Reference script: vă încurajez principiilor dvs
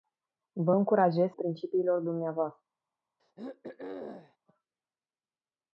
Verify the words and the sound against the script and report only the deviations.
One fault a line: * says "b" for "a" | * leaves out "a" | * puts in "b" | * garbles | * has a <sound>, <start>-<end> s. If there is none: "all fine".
* has a throat clearing, 3.2-4.4 s